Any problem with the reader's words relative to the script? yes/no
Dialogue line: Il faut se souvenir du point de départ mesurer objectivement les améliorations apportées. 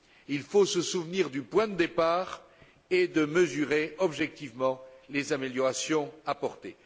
yes